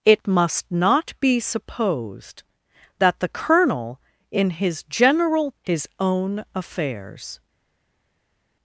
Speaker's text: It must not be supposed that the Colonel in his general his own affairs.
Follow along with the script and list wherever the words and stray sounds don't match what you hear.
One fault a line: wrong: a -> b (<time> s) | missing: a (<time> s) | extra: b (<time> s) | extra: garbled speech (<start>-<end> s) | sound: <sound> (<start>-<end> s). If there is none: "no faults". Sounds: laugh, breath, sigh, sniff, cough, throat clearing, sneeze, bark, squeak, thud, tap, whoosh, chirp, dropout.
no faults